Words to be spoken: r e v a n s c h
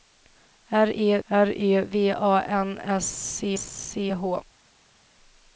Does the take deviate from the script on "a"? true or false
false